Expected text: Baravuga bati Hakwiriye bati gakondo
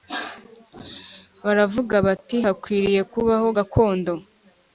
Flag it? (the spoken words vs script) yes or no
yes